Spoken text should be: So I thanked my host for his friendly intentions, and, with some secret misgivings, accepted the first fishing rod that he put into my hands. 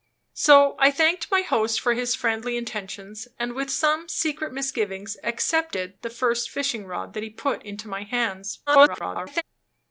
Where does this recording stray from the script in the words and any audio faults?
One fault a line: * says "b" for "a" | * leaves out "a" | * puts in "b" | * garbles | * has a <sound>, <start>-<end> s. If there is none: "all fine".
* garbles